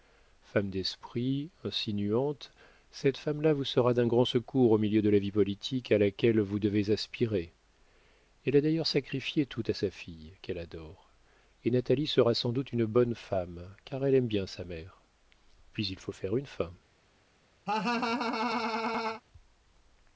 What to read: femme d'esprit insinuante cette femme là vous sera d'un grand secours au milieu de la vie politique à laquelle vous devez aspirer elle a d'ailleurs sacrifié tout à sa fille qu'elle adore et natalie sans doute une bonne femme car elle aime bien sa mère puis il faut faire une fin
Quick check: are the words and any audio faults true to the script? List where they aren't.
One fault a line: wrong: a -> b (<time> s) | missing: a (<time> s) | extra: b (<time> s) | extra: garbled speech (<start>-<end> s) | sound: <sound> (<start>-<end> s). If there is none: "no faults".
extra: sera (12.1 s)
sound: laugh (17.7-19.2 s)